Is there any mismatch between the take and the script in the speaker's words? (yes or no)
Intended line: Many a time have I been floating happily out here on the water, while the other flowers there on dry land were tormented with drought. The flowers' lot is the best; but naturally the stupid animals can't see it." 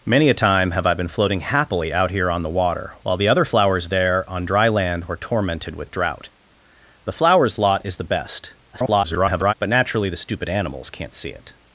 yes